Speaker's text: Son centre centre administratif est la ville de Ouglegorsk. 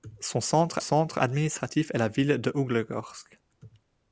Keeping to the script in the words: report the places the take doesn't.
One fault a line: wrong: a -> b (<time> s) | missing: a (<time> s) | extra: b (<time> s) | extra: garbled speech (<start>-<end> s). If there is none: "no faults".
no faults